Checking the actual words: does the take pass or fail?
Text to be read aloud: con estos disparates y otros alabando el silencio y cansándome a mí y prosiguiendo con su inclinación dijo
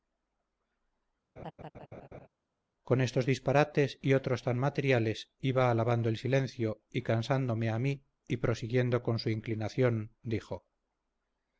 fail